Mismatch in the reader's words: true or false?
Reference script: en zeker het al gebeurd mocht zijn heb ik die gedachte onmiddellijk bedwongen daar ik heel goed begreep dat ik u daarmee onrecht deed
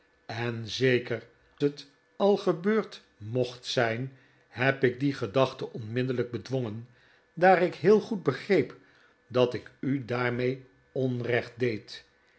false